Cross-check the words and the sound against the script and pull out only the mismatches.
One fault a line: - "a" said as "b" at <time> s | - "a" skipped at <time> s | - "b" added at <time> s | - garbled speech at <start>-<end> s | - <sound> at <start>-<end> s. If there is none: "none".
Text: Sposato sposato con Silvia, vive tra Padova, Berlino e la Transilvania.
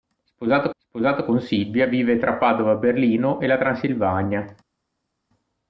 none